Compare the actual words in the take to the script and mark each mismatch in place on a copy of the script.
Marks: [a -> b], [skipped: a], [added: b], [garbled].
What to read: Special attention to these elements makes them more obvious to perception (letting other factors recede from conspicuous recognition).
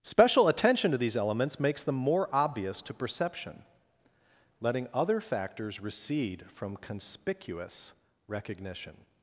Special attention to these elements makes them more obvious to perception (letting other factors recede from conspicuous recognition).